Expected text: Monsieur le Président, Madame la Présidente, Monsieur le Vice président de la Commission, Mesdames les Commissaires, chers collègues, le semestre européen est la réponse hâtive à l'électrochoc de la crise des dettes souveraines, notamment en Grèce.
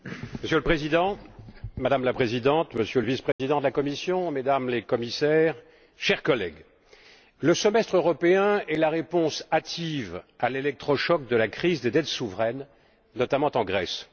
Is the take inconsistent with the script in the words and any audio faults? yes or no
yes